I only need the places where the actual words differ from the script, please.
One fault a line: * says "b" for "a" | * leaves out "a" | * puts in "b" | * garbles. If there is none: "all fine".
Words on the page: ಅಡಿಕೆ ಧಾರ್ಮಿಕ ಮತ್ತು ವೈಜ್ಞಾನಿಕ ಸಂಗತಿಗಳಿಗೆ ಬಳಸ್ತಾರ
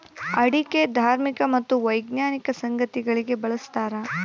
all fine